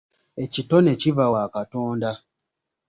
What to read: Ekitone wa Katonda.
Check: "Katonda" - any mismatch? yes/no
no